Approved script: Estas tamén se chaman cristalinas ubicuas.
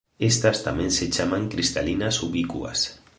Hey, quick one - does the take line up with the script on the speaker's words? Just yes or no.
yes